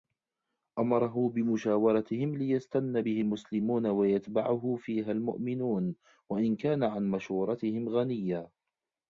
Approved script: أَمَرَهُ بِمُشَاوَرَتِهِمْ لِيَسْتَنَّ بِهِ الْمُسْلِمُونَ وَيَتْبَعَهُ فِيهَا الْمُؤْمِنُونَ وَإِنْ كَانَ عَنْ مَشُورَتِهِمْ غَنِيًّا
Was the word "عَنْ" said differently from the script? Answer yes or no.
no